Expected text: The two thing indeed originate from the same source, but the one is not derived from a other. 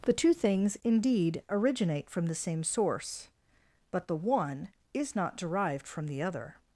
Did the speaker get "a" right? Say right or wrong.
wrong